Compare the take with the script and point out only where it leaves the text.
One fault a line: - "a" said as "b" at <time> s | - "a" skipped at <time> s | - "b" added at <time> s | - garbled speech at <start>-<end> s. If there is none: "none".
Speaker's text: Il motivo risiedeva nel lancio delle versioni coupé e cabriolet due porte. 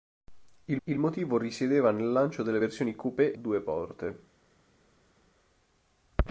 - "il" added at 0.8 s
- "e cabriolet" skipped at 3.3 s